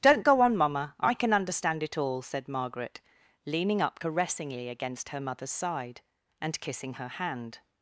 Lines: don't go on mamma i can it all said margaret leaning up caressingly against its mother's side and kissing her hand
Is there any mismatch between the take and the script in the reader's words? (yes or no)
yes